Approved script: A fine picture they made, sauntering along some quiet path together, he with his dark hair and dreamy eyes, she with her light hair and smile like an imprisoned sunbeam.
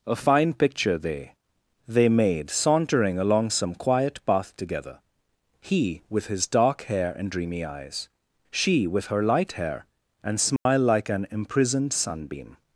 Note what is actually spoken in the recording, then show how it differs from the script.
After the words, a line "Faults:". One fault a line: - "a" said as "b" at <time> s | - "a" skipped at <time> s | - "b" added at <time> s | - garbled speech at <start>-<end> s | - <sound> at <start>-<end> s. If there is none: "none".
A fine picture they they made, sauntering along some quiet path together, he with his dark hair and dreamy eyes, she with her light hair and smile like an imprisoned sunbeam.
Faults:
- "they" added at 1.9 s
- dropout at 10.6-10.7 s